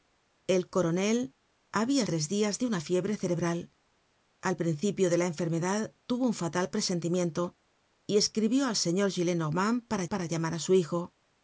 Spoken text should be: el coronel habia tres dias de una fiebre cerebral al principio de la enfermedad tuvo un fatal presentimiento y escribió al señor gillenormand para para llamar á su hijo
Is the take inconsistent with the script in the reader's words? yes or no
no